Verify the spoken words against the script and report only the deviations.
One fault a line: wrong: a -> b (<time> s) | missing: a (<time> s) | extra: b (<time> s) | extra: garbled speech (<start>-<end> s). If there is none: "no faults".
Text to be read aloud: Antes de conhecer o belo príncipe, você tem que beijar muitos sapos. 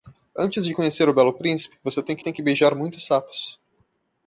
extra: tem que (2.2 s)